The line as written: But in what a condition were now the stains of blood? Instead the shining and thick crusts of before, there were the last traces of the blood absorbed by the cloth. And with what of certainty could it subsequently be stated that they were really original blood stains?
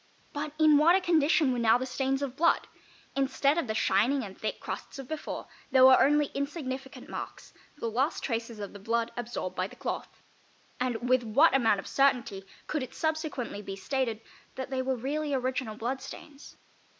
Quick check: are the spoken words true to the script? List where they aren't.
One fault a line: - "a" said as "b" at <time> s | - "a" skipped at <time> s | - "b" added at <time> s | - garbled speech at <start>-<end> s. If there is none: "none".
- "of" added at 3.6 s
- "only insignificant marks" added at 6.0 s
- "amount" added at 11.6 s